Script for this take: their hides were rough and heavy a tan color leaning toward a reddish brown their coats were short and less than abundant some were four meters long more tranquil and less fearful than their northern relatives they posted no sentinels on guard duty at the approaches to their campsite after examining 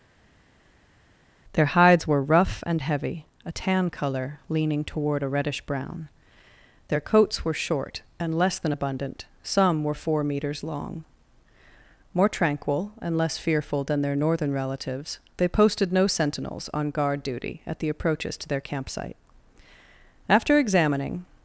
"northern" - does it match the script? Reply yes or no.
yes